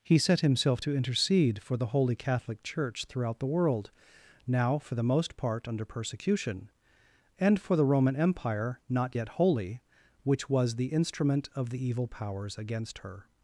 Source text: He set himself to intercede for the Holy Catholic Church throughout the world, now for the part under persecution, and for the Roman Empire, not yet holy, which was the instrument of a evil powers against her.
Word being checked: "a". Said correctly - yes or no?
no